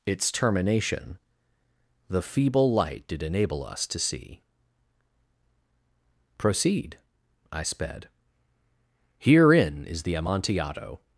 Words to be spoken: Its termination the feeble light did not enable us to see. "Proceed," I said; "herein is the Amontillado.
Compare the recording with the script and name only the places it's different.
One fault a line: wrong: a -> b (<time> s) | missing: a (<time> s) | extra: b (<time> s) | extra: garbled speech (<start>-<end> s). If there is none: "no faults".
missing: not (3.2 s)
wrong: said -> sped (7.6 s)